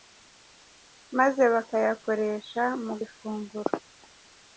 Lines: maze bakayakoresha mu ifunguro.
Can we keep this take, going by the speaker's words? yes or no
yes